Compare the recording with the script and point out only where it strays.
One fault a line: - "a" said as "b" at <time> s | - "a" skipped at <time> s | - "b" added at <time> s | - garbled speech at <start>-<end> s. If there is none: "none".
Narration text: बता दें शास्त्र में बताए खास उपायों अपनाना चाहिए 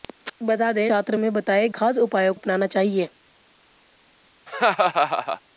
none